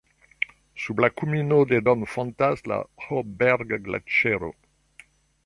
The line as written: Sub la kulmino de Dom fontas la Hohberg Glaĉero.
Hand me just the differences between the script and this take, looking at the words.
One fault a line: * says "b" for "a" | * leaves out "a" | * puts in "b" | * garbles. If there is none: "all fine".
all fine